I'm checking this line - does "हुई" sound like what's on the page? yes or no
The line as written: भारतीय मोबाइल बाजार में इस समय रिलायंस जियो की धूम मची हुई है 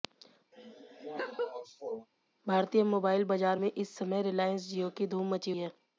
no